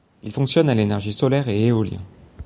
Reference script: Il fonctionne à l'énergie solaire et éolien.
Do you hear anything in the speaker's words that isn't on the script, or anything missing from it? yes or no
no